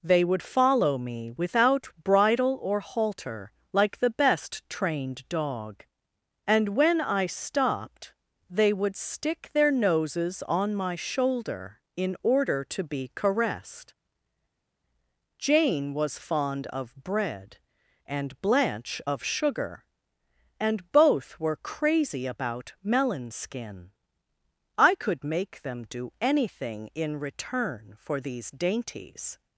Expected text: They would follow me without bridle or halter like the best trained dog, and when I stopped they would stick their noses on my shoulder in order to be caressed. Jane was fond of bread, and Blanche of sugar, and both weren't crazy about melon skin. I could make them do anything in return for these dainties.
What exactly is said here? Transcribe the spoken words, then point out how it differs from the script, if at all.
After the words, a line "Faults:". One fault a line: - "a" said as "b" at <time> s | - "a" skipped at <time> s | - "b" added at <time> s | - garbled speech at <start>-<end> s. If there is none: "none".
They would follow me without bridle or halter like the best trained dog, and when I stopped they would stick their noses on my shoulder in order to be caressed. Jane was fond of bread, and Blanche of sugar, and both were crazy about melon skin. I could make them do anything in return for these dainties.
Faults:
- "weren't" said as "were" at 21.4 s